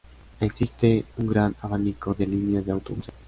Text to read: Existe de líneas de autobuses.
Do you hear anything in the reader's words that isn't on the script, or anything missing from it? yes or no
yes